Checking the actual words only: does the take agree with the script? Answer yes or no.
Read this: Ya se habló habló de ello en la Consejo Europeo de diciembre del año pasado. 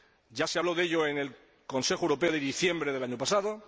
no